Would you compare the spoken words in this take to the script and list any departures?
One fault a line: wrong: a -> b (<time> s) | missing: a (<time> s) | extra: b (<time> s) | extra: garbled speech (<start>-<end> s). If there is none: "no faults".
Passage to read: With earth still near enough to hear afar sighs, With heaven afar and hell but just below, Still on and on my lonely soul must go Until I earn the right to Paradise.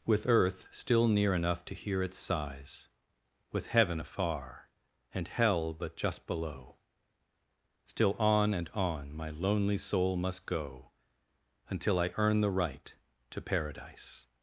wrong: afar -> its (2.0 s)